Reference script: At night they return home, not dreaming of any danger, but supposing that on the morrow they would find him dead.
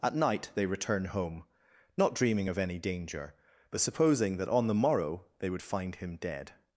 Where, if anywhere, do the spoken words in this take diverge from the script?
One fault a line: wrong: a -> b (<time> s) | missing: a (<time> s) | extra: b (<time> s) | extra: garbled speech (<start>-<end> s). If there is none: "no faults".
no faults